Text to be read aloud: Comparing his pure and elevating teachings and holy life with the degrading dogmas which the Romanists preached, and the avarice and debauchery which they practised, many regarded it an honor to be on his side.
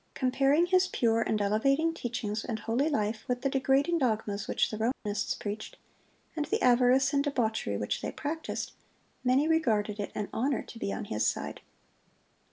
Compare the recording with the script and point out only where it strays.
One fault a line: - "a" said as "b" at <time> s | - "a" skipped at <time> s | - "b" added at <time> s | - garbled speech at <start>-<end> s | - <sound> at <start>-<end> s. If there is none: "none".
- dropout at 4.9-5.1 s